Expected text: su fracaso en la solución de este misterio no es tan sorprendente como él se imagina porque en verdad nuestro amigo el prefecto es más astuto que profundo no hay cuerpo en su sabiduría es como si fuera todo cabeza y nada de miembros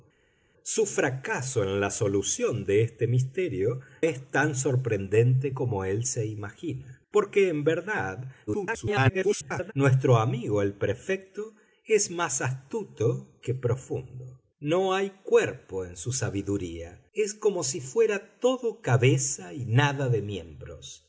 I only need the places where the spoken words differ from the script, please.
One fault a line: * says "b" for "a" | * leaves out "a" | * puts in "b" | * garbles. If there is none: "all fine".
* leaves out "no"
* garbles